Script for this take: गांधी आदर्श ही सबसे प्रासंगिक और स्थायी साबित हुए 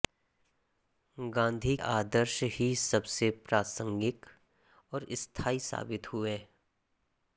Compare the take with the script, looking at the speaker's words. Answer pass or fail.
pass